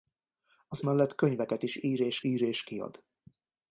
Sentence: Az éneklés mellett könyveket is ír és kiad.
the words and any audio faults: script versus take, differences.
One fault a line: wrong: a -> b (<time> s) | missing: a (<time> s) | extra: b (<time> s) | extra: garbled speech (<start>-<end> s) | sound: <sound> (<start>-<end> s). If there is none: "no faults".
missing: éneklés (0.8 s)
extra: ír és (2.2 s)